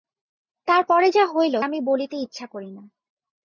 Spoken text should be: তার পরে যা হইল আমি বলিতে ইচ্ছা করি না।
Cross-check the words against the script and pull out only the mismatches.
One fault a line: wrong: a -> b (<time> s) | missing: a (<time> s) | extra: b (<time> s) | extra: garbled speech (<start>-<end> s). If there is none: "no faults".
no faults